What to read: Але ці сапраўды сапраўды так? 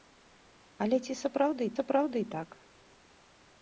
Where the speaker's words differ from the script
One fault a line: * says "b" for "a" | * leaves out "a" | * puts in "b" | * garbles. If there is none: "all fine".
all fine